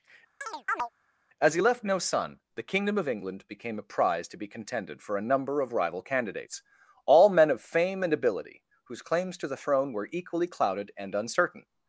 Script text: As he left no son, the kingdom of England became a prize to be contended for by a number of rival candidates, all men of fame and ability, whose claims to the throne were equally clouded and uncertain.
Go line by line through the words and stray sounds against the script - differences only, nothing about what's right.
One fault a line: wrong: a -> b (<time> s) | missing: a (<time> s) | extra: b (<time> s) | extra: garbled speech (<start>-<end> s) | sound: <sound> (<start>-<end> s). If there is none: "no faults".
sound: chirp (0.4-0.9 s)
missing: by (5.2 s)